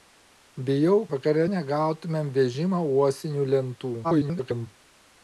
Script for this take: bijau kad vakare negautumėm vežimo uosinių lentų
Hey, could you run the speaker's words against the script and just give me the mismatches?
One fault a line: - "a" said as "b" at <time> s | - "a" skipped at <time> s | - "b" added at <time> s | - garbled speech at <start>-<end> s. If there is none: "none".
- "kad" skipped at 0.9 s
- garbled speech at 4.0-4.7 s